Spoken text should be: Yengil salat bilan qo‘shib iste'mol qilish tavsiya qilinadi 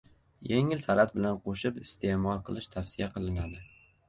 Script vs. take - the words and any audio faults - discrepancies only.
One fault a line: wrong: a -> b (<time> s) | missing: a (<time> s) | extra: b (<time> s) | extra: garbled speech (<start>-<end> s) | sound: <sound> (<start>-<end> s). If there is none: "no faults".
no faults